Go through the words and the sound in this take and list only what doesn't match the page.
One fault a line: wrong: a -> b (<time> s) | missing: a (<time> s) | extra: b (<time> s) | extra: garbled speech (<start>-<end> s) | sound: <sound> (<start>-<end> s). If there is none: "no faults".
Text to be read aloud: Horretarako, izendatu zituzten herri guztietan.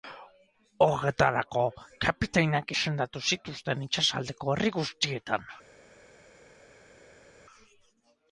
extra: kapitainak (2.1 s)
extra: itsasaldeko (3.9 s)